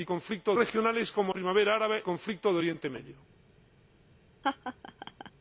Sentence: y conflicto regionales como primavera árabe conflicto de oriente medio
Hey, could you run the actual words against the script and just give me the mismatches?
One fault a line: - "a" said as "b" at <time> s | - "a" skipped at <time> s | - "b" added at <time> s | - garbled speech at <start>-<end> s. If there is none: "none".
none